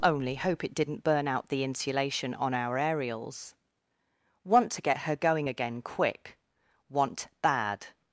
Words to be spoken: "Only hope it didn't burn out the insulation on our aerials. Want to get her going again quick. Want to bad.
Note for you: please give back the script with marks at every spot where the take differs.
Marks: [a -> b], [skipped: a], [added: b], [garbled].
"Only hope it didn't burn out the insulation on our aerials. Want to get her going again quick. Want [skipped: to] bad.